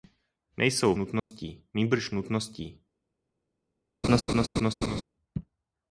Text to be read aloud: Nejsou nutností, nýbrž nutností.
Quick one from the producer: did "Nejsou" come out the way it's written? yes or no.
yes